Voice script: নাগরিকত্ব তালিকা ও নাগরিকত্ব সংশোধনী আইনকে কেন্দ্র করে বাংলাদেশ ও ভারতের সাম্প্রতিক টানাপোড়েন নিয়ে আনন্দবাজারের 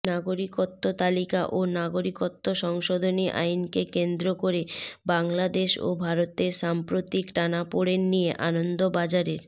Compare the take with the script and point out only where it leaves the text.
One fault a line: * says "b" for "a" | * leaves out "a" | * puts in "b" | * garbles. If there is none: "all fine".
all fine